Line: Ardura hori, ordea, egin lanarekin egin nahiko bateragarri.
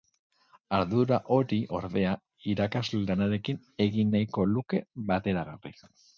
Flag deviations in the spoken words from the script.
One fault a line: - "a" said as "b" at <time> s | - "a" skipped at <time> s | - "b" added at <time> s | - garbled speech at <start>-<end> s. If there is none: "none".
- "egin" said as "irakasle" at 2.5 s
- "luke" added at 4.5 s